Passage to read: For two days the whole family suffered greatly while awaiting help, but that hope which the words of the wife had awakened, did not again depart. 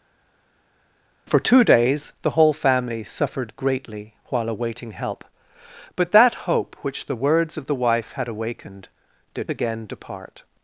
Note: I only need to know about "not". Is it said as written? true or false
false